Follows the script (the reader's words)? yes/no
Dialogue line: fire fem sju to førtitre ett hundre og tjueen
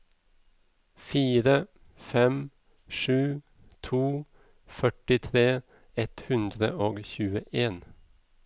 yes